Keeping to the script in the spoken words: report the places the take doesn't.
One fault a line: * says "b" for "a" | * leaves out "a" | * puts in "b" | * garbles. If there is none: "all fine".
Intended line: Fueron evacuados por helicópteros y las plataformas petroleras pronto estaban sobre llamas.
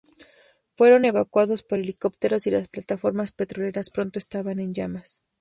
* says "en" for "sobre"